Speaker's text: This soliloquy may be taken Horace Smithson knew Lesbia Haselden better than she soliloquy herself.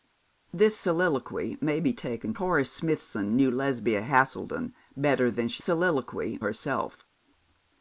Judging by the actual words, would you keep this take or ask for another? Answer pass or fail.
pass